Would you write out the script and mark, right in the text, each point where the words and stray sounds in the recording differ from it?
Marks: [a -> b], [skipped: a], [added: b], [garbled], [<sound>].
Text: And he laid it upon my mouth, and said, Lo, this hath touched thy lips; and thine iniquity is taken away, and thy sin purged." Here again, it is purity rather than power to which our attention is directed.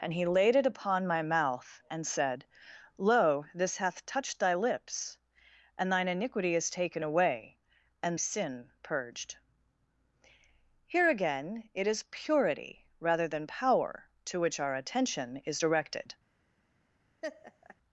And he laid it upon my mouth, and said, Lo, this hath touched thy lips; and thine iniquity is taken away, and [skipped: thy] sin purged." Here again, it is purity rather than power to which our attention is directed. [laugh]